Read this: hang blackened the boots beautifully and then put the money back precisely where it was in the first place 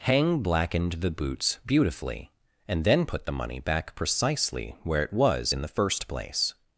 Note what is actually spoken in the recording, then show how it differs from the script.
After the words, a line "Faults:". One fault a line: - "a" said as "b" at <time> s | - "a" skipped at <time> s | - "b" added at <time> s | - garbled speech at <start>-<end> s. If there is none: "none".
hang blackened the boots beautifully and then put the money back precisely where it was in the first place
Faults:
none